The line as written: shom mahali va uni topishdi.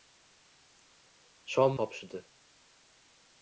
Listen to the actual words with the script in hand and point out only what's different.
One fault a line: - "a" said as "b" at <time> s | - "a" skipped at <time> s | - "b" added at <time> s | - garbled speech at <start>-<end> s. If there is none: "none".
- "mahali va uni" skipped at 1.8 s